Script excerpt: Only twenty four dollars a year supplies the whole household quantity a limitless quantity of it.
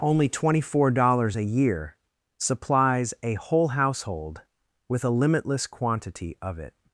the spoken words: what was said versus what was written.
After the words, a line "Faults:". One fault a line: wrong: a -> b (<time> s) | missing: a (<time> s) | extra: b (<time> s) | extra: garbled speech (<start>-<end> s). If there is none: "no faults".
Only twenty four dollars a year supplies a whole household with a limitless quantity of it.
Faults:
wrong: the -> a (3.2 s)
wrong: quantity -> with (4.9 s)